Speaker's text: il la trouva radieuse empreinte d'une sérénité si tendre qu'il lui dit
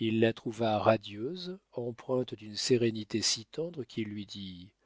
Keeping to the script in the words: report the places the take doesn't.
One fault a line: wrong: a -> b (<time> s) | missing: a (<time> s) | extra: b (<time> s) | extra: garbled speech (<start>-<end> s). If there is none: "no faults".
no faults